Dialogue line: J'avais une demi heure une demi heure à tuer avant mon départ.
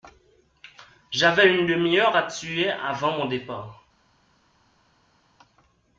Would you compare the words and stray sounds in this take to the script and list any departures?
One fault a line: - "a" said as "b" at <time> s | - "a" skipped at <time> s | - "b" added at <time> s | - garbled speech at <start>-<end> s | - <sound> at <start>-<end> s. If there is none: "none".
- "une demi heure" skipped at 2.2 s